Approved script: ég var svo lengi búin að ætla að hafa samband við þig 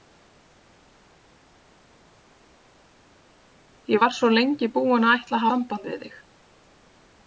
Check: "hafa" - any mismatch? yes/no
yes